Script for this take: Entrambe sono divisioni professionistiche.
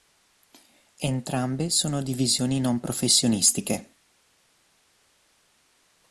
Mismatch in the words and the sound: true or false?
true